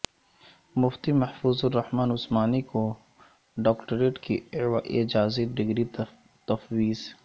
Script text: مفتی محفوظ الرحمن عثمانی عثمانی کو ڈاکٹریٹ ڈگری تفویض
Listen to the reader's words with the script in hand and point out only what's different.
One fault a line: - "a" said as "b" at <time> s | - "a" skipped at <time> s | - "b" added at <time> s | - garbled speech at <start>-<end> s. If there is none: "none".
- "عثمانی" skipped at 2.6 s
- "کی اعزازی" added at 4.2 s